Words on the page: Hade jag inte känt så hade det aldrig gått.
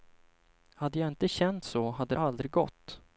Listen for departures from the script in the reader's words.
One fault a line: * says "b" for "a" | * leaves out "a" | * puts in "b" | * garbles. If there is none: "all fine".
all fine